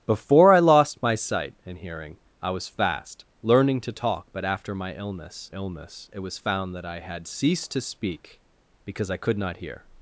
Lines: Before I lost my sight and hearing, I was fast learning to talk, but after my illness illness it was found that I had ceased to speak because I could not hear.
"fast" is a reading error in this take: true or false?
false